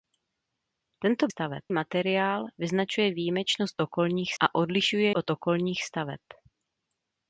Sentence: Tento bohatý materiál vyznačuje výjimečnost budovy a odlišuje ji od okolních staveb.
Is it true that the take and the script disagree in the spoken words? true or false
true